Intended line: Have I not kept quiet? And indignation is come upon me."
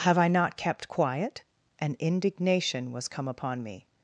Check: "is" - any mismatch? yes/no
yes